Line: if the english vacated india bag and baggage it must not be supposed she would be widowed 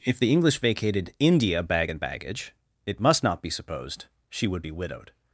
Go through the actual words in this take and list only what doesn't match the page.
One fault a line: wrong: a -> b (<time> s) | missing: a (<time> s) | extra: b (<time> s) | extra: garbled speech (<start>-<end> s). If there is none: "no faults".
no faults